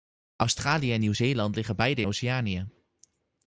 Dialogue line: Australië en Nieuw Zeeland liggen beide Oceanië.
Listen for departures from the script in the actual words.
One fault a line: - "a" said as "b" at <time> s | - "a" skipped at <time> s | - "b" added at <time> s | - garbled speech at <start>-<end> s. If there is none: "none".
none